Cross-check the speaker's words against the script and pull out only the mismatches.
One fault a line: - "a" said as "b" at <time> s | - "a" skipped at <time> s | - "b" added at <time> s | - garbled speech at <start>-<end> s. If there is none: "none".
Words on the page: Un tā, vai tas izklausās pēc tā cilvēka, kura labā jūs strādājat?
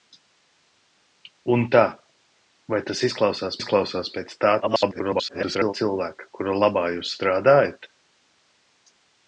- "izklausās" added at 3.6 s
- garbled speech at 4.6-5.7 s